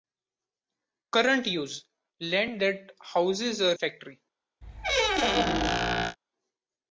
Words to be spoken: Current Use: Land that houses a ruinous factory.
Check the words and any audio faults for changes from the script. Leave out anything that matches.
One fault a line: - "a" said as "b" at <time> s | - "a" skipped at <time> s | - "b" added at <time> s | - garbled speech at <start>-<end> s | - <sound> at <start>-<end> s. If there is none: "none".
- "ruinous" skipped at 3.8 s
- squeak at 4.6-6.2 s